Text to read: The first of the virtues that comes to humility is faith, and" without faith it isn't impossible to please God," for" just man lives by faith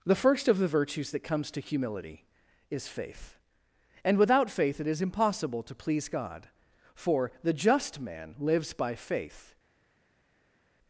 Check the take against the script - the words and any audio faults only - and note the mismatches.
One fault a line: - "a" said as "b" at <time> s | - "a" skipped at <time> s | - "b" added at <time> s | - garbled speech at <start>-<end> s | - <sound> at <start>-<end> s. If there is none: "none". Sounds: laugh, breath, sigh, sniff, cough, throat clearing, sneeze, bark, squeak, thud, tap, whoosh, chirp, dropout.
- "isn't" said as "is" at 4.9 s
- "the" added at 7.4 s